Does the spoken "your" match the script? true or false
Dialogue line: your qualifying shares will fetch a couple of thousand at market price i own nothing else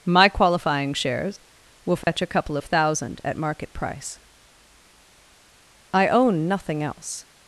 false